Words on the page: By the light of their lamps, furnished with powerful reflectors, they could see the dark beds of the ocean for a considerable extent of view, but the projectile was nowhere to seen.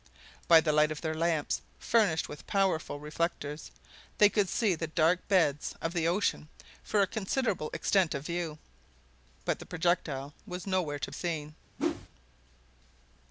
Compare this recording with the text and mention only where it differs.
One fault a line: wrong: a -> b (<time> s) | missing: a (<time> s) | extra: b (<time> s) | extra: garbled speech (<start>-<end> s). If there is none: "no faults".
no faults